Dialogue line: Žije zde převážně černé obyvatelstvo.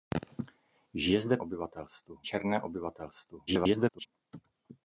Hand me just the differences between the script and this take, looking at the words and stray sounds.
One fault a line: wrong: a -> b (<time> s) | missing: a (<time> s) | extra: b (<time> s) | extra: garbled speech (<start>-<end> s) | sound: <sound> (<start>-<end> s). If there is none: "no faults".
wrong: převážně -> obyvatelstvo (1.4 s)
extra: garbled speech (3.5-4.1 s)